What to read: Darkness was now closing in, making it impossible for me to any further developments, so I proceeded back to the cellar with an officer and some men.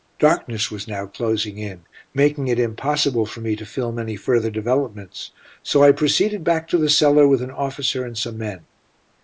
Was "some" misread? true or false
false